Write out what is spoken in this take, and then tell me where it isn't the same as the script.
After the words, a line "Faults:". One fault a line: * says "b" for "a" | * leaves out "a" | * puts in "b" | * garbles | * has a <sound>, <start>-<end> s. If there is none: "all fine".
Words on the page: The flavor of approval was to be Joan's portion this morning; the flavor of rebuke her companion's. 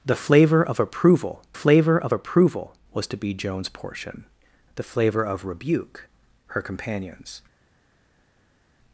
The flavor of approval flavor of approval was to be Joan's portion; the flavor of rebuke her companion's.
Faults:
* puts in "flavor of approval"
* leaves out "this morning"